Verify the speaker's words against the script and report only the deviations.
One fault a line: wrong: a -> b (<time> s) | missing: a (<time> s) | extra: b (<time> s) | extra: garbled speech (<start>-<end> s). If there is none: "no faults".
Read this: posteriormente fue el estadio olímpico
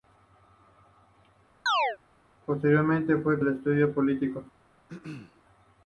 no faults